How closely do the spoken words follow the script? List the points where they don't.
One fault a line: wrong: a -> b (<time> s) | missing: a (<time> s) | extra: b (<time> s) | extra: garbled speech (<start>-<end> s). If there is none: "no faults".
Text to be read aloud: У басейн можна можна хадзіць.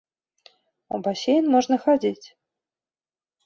missing: можна (1.8 s)